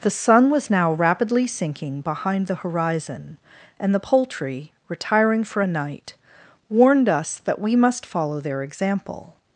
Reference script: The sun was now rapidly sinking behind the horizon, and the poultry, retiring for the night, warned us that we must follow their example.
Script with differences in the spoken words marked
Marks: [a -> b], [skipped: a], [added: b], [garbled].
The sun was now rapidly sinking behind the horizon, and the poultry, retiring for [the -> a] night, warned us that we must follow their example.